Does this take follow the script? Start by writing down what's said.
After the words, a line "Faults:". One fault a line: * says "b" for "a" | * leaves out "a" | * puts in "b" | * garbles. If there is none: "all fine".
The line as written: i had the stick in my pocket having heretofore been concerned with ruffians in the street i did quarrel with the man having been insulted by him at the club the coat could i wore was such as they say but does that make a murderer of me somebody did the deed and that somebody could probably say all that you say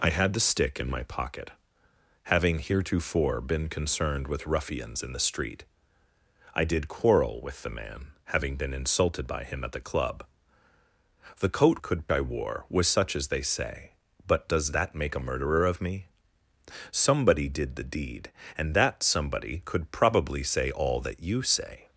i had the stick in my pocket having heretofore been concerned with ruffians in the street i did quarrel with the man having been insulted by him at the club the coat could i wore was such as they say but does that make a murderer of me somebody did the deed and that somebody could probably say all that you say
Faults:
all fine